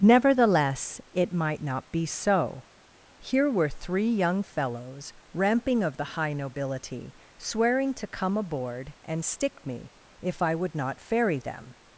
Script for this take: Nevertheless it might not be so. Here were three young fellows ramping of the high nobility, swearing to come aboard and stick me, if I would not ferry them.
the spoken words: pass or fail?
pass